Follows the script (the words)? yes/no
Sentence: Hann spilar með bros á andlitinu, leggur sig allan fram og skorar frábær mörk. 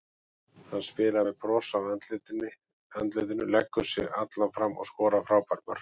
yes